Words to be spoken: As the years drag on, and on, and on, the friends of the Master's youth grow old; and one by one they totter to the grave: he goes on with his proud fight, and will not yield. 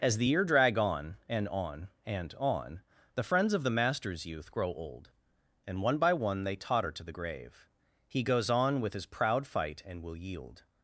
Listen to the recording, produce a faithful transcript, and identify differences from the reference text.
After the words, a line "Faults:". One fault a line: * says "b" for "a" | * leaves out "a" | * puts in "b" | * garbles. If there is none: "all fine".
As the year drag on, and on, and on, the friends of the Master's youth grow old; and one by one they totter to the grave: he goes on with his proud fight, and will yield.
Faults:
* says "year" for "years"
* leaves out "not"